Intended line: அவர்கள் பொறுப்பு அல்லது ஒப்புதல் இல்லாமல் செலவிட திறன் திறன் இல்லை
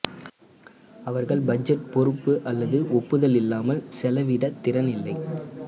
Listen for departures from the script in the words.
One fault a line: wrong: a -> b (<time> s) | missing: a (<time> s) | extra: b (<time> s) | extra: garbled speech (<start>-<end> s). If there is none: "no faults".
extra: பட்ஜெட் (1.5 s)
missing: திறன் (4.9 s)